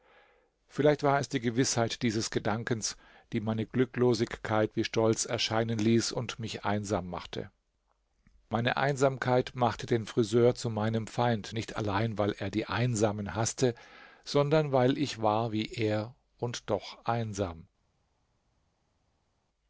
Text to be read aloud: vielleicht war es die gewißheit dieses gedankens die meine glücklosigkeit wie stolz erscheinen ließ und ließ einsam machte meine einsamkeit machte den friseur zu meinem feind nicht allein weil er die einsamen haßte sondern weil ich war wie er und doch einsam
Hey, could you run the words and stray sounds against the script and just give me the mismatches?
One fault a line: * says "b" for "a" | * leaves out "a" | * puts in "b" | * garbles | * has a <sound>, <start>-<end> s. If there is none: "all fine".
* says "mich" for "ließ"